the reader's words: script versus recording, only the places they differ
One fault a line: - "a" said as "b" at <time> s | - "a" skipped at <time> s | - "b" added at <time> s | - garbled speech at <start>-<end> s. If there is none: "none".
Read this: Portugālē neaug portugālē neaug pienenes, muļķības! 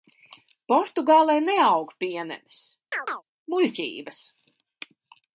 - "portugālē neaug" skipped at 1.9 s